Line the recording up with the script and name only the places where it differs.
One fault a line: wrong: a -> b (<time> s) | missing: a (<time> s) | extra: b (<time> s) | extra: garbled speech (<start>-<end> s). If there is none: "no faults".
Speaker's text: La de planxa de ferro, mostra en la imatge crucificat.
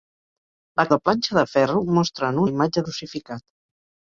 no faults